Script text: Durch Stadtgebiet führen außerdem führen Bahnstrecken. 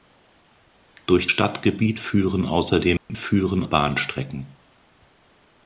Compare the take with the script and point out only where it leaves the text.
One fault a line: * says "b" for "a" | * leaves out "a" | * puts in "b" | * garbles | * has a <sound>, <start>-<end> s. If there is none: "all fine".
* has a dropout, 3.0-3.1 s